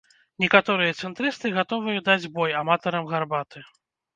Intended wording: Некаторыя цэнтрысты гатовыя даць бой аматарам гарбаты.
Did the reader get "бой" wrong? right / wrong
right